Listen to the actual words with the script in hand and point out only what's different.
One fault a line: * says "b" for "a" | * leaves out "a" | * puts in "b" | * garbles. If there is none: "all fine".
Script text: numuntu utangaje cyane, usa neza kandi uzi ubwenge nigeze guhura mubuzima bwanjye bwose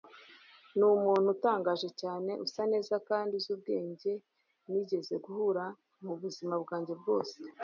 all fine